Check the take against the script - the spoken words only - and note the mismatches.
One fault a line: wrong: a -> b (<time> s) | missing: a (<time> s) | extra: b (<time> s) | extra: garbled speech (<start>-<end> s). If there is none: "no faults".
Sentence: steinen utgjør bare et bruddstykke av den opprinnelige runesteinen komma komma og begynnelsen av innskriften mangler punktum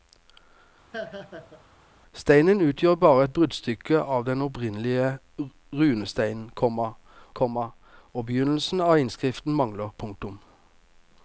no faults